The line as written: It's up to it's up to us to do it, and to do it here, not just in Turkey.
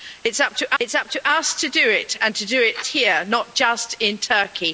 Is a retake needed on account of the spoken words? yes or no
no